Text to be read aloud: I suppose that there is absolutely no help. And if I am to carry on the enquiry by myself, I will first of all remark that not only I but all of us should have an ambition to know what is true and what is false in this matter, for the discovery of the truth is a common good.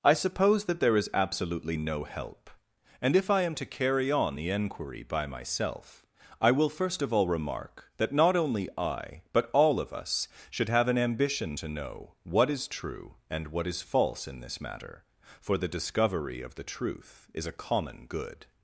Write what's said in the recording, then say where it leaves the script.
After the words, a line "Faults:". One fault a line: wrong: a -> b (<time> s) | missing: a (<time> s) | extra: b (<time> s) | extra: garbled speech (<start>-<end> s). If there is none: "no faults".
I suppose that there is absolutely no help. And if I am to carry on the enquiry by myself, I will first of all remark that not only I but all of us should have an ambition to know what is true and what is false in this matter, for the discovery of the truth is a common good.
Faults:
no faults